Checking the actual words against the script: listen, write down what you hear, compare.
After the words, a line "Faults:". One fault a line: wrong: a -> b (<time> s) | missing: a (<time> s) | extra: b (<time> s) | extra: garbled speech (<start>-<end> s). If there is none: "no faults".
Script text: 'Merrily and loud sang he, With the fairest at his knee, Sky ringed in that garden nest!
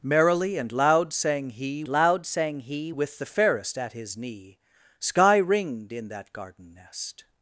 'Merrily and loud sang he loud sang he, With the fairest at his knee, Sky ringed in that garden nest!
Faults:
extra: loud sang he (1.9 s)